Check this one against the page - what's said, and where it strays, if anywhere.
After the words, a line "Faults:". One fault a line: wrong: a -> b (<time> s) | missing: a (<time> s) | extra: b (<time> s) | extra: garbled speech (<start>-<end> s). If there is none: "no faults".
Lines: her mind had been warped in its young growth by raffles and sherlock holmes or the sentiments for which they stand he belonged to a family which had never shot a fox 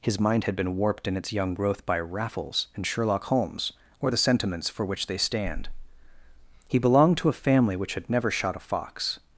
his mind had been warped in its young growth by raffles and sherlock holmes or the sentiments for which they stand he belonged to a family which had never shot a fox
Faults:
wrong: her -> his (0.0 s)